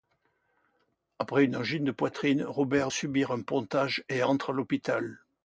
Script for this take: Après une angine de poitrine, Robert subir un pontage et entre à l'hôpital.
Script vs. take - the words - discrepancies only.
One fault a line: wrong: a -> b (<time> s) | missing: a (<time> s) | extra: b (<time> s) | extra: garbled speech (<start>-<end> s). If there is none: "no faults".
no faults